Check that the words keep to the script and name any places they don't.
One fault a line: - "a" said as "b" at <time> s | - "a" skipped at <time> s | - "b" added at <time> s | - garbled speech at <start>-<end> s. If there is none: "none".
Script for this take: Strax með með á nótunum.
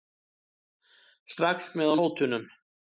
- "með" skipped at 1.9 s